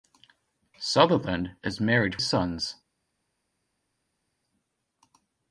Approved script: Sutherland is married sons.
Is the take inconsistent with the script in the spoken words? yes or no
no